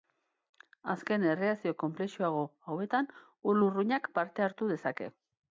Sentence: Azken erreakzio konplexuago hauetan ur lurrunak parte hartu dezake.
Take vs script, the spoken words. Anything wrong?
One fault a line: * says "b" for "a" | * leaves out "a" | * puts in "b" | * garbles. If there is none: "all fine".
all fine